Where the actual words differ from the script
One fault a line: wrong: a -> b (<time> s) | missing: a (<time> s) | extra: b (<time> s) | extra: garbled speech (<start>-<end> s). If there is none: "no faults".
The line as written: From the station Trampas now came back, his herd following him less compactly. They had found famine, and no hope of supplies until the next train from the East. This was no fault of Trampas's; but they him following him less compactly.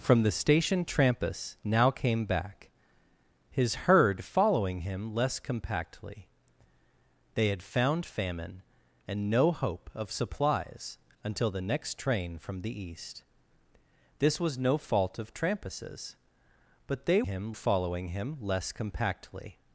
no faults